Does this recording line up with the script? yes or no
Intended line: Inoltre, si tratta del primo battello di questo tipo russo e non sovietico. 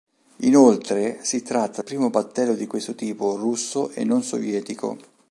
no